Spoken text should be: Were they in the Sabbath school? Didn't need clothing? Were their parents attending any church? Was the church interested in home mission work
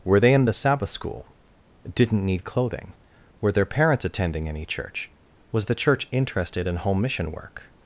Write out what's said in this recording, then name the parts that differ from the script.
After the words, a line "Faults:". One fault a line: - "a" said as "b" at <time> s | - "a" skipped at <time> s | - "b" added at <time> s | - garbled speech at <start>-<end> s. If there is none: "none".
Were they in the Sabbath school? Didn't need clothing? Were their parents attending any church? Was the church interested in home mission work
Faults:
none